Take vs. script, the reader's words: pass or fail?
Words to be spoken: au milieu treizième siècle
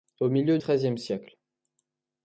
pass